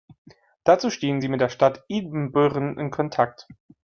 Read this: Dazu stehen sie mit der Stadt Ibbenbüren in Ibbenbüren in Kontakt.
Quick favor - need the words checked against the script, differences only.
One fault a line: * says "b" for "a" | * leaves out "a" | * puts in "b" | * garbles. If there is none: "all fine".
* leaves out "Ibbenbüren in"